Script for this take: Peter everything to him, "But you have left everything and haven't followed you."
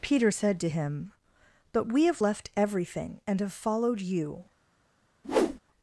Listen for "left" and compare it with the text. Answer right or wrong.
right